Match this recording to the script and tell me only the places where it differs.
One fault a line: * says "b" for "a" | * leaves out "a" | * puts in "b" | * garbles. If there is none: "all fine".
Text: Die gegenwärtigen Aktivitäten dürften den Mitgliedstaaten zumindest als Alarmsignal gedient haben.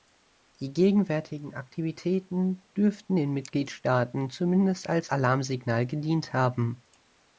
all fine